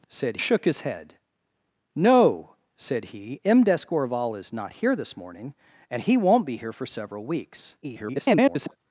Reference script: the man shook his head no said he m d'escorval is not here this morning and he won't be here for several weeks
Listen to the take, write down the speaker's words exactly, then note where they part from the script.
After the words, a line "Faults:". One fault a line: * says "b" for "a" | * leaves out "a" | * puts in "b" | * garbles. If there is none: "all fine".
the said shook his head no said he m d'escorval is not here this morning and he won't be here for several weeks [garbled]
Faults:
* says "said" for "man"
* garbles